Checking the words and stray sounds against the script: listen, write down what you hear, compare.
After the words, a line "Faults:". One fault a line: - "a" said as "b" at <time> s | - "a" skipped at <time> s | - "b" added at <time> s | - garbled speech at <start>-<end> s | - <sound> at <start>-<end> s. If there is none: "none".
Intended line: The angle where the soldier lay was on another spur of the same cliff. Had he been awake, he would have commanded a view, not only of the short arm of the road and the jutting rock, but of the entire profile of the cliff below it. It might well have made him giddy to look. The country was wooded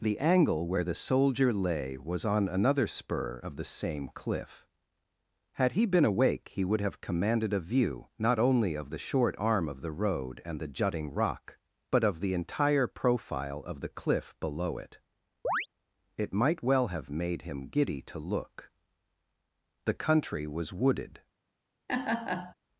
The angle where the soldier lay was on another spur of the same cliff. Had he been awake, he would have commanded a view, not only of the short arm of the road and the jutting rock, but of the entire profile of the cliff below it. It might well have made him giddy to look. The country was wooded
Faults:
- chirp at 15.4-15.7 s
- laugh at 21.9-22.5 s